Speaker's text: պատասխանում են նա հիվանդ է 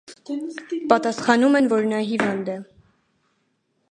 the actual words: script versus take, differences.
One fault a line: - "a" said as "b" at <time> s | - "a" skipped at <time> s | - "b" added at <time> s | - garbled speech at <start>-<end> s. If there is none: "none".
- "որ" added at 1.7 s